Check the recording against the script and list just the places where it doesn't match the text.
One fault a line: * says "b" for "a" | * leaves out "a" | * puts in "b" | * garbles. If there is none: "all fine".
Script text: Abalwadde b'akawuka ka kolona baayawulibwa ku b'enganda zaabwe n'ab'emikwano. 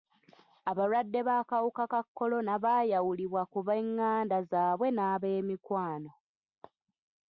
all fine